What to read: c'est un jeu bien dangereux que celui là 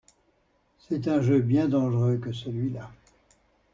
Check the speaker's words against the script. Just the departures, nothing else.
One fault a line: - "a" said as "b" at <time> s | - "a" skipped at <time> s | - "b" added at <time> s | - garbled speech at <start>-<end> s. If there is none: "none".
none